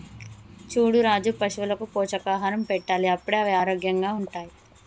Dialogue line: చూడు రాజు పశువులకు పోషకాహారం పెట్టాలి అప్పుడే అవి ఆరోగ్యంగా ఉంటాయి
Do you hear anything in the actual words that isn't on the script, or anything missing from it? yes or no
no